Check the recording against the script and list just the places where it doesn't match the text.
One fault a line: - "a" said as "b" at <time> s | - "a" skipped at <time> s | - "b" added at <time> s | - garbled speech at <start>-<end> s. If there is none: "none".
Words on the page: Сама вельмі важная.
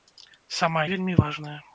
none